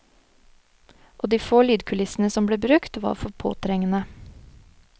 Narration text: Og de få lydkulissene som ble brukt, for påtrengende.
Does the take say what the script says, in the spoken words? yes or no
no